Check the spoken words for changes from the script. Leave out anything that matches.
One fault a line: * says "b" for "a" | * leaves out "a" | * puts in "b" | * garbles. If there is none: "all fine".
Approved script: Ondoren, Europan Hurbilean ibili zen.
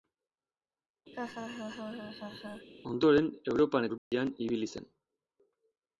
all fine